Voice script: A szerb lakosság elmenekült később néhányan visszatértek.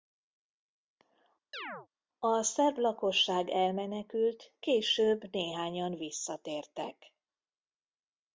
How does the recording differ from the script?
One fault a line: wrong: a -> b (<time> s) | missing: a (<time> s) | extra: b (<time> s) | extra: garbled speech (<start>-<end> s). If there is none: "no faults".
no faults